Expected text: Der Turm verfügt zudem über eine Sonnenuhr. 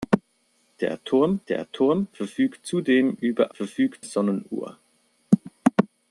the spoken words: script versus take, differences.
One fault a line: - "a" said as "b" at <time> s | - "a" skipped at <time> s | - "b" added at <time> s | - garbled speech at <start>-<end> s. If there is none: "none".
- "der Turm" added at 1.5 s
- "eine" said as "verfügt" at 3.5 s